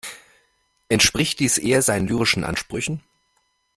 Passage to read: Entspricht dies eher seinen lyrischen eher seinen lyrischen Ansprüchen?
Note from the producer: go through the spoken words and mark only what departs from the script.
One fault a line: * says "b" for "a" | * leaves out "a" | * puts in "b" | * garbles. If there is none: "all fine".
* leaves out "eher seinen lyrischen"